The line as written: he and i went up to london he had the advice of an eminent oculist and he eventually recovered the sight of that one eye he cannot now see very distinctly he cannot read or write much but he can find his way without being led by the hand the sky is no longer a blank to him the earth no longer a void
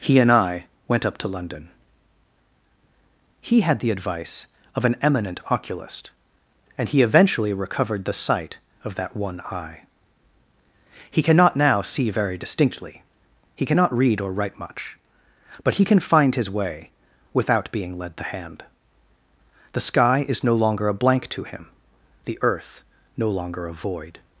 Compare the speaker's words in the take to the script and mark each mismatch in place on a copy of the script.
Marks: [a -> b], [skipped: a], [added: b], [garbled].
he and i went up to london he had the advice of an eminent oculist and he eventually recovered the sight of that one eye he cannot now see very distinctly he cannot read or write much but he can find his way without being led [skipped: by] the hand the sky is no longer a blank to him the earth no longer a void